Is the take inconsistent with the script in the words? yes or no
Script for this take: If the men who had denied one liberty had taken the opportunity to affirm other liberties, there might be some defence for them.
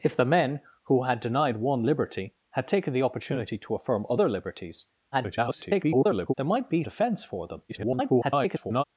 yes